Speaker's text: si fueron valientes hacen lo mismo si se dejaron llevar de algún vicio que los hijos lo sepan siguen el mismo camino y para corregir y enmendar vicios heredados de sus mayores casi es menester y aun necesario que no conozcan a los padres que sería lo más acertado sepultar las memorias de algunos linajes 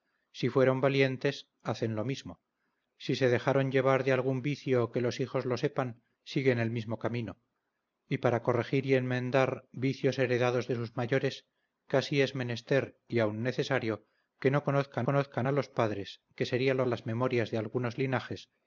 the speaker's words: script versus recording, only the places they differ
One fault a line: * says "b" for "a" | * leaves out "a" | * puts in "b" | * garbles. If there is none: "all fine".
* puts in "conozcan"
* leaves out "más acertado sepultar"